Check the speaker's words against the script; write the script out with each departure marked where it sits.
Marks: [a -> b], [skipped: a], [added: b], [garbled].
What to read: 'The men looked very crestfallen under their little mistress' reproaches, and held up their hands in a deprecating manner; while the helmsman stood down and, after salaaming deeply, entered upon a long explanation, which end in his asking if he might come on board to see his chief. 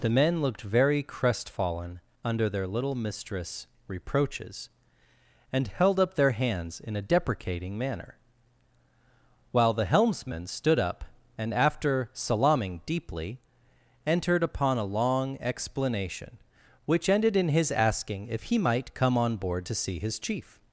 'The men looked very crestfallen under their little mistress' reproaches, and held up their hands in a deprecating manner; while the helmsman stood [down -> up] and, after salaaming deeply, entered upon a long explanation, which [end -> ended] in his asking if he might come on board to see his chief.